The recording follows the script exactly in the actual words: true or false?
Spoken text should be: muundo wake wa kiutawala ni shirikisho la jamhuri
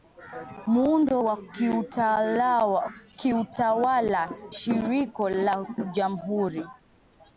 false